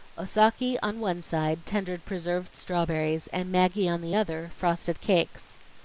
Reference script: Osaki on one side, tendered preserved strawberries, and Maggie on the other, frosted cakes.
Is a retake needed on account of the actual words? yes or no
no